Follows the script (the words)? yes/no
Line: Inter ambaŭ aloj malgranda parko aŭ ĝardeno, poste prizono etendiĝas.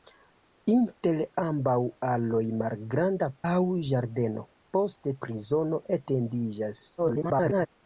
no